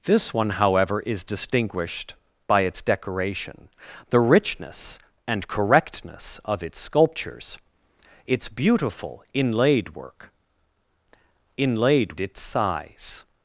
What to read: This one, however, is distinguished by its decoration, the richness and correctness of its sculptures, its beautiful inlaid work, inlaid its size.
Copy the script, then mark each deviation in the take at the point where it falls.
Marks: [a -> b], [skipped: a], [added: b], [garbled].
This one, however, is distinguished by its decoration, the richness and correctness of its sculptures, its beautiful inlaid work, inlaid its size.